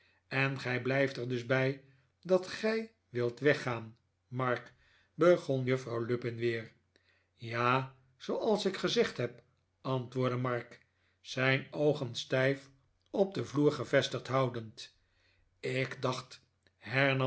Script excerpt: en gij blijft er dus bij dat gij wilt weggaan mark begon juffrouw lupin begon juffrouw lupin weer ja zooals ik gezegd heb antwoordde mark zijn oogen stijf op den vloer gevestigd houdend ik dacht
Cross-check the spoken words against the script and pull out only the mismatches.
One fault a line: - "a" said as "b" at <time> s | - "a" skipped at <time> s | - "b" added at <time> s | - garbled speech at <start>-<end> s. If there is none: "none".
- "begon juffrouw lupin" skipped at 6.3 s